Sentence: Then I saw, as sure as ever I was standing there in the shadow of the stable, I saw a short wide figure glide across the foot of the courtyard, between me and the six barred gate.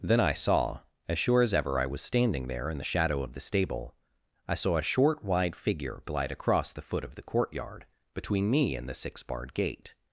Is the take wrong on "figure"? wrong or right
right